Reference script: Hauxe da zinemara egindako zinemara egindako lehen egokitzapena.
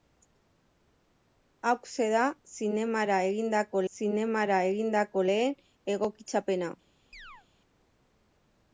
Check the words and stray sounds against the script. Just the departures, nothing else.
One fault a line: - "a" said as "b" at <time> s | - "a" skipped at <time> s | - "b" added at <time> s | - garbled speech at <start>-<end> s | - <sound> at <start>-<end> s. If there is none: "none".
- chirp at 7.1-7.5 s